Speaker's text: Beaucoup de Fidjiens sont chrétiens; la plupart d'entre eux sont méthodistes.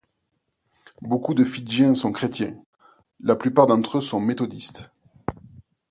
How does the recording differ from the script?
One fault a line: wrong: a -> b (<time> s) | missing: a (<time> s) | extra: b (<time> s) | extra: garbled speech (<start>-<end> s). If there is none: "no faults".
no faults